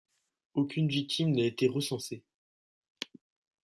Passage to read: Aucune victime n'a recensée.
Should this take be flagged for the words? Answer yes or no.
yes